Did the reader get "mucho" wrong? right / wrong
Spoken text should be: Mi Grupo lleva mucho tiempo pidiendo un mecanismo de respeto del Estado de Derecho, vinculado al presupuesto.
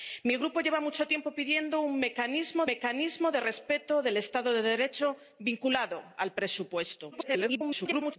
right